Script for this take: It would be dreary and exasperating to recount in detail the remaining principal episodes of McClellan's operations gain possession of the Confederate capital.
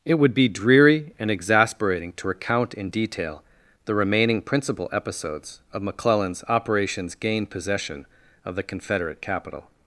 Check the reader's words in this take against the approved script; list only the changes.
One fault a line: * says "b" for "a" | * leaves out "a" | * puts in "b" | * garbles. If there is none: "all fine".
all fine